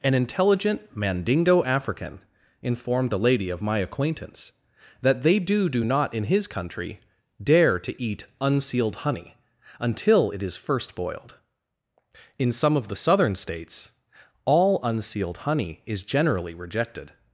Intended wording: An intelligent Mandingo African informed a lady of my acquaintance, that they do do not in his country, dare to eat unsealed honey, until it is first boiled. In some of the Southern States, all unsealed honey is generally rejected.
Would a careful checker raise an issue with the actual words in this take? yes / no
no